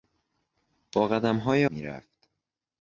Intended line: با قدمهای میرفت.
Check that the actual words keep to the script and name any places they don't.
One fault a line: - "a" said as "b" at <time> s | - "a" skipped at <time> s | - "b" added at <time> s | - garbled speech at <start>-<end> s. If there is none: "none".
none